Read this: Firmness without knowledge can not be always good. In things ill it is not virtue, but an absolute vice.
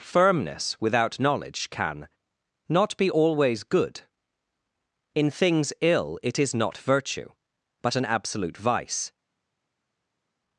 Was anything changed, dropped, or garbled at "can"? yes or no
no